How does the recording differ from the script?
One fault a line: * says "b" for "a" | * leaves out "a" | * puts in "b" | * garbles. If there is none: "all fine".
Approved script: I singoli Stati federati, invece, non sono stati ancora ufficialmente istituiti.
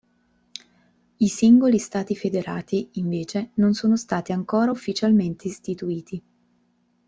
all fine